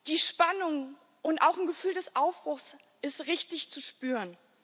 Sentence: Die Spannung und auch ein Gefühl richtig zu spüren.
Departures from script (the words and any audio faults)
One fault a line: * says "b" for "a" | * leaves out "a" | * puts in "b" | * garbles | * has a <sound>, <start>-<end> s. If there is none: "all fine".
* puts in "des Aufbruchs sind"